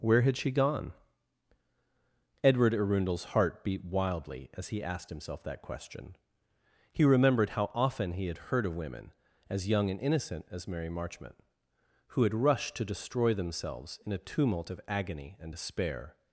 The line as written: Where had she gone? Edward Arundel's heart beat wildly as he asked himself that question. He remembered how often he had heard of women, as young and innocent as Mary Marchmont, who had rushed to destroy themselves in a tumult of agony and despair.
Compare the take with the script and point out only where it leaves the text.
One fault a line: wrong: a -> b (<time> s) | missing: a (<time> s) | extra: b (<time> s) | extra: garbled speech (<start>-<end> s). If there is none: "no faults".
no faults